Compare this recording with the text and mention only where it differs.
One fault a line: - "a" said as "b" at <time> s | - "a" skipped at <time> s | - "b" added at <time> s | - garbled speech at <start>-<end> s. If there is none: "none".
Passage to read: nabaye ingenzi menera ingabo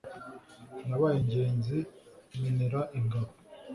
none